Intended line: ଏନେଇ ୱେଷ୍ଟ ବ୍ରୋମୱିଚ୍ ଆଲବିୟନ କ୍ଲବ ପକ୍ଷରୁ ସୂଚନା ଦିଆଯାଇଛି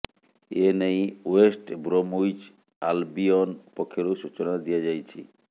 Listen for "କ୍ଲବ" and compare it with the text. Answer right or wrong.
wrong